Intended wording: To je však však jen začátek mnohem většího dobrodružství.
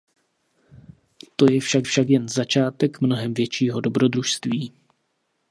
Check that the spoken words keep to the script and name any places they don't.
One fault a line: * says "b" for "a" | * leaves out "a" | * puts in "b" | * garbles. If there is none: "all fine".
all fine